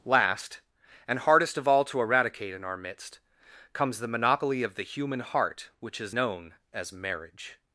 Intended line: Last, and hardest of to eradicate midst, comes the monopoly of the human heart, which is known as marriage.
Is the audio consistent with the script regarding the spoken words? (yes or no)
no